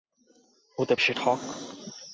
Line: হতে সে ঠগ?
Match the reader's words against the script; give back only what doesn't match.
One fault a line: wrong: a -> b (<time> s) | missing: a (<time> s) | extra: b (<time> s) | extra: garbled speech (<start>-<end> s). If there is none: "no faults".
no faults